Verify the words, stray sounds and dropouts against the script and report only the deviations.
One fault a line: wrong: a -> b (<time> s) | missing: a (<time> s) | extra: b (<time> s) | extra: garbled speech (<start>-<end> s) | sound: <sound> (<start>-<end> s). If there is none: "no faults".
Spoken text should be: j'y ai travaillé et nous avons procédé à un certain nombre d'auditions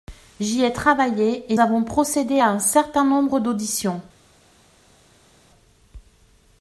missing: nous (1.6 s)